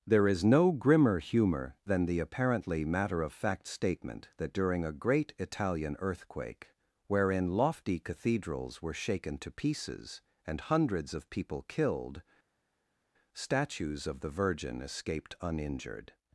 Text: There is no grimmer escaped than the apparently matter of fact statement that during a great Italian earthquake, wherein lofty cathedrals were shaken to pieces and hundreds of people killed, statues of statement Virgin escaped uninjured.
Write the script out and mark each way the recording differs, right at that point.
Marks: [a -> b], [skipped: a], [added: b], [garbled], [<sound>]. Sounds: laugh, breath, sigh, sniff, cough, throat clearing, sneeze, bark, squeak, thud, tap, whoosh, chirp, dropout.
There is no grimmer [escaped -> humor] than the apparently matter of fact statement that during a great Italian earthquake, wherein lofty cathedrals were shaken to pieces and hundreds of people killed, statues of [statement -> the] Virgin escaped uninjured.